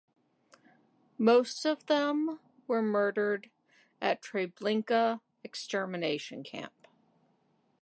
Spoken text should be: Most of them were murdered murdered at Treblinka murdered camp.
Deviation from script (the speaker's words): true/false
true